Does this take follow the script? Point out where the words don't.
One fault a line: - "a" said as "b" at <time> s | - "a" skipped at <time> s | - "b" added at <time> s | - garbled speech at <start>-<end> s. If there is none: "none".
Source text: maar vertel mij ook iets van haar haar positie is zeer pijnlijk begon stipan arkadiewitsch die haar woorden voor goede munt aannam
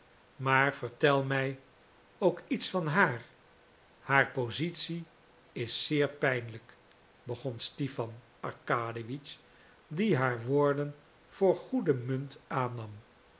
none